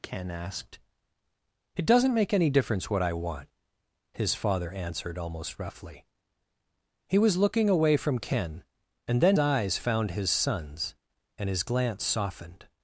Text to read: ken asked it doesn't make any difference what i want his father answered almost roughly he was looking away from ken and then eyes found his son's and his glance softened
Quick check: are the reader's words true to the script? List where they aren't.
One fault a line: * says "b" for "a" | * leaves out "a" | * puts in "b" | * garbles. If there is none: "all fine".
all fine